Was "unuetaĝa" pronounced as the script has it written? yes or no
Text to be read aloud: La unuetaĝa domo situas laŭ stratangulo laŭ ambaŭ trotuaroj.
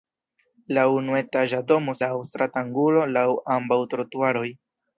yes